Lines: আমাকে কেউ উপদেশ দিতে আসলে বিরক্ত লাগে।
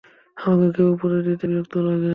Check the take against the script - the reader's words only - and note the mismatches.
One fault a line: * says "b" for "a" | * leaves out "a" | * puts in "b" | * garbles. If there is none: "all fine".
* leaves out "আসলে"